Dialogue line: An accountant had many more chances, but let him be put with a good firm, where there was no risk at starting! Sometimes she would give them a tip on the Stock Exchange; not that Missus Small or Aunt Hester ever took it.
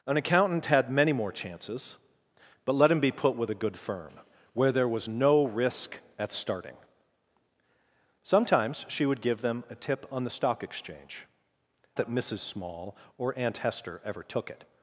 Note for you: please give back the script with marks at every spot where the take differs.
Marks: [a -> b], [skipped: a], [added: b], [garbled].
An accountant had many more chances, but let him be put with a good firm, where there was no risk at starting! Sometimes she would give them a tip on the Stock Exchange; [skipped: not] that Missus Small or Aunt Hester ever took it.